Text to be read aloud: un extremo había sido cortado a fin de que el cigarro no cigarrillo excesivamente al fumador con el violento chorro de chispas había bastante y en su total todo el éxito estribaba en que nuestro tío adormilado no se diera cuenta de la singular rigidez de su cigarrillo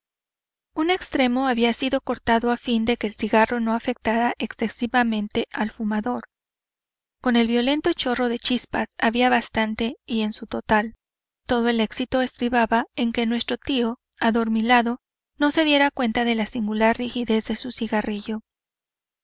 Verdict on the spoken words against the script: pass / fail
fail